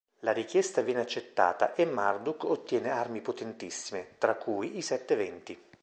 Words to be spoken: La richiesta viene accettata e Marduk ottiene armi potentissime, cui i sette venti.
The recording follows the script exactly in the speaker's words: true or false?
false